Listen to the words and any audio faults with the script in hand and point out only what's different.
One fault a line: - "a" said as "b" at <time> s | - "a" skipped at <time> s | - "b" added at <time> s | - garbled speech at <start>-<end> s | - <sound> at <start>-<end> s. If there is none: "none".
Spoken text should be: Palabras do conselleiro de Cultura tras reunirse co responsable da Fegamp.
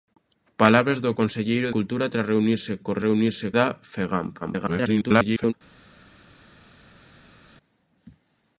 - "de" skipped at 1.7 s
- "responsable" said as "reunirse" at 3.1 s
- garbled speech at 4.4-5.5 s